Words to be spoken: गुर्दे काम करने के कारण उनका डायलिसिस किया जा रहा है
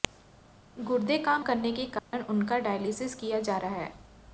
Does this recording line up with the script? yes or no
yes